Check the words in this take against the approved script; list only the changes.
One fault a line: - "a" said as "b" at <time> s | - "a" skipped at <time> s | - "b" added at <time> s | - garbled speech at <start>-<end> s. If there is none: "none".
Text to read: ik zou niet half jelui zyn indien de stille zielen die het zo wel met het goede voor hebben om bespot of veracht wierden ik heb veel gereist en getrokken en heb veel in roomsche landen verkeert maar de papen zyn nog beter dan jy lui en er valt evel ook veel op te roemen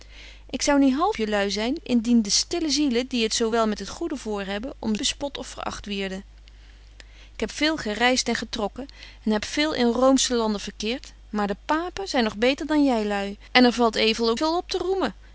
none